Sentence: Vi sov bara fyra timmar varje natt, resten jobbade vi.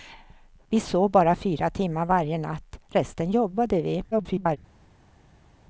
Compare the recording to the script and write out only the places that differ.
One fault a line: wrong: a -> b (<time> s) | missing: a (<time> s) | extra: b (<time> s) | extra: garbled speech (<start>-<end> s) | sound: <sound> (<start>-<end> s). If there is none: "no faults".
extra: garbled speech (4.1-4.6 s)